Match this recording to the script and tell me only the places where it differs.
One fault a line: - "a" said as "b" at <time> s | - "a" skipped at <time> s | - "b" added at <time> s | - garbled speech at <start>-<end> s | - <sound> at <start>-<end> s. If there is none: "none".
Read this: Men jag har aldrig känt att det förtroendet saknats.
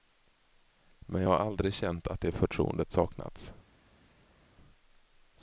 none